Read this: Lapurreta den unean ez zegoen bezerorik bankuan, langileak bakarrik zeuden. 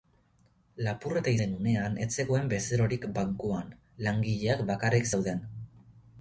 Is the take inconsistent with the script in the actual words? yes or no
no